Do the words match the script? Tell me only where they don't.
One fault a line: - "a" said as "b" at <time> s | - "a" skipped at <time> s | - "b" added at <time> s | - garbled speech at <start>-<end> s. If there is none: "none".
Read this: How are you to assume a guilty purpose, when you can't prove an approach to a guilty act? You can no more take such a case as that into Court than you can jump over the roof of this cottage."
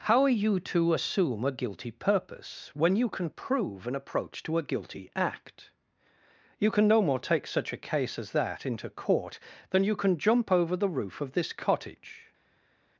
- "can't" said as "can" at 3.1 s